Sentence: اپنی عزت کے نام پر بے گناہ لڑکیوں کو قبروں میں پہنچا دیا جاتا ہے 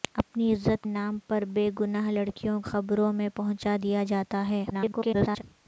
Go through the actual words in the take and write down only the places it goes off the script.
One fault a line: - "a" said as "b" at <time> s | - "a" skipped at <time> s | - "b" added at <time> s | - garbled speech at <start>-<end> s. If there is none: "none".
- "کے" skipped at 0.8 s
- "کو" skipped at 2.6 s
- garbled speech at 4.7-5.4 s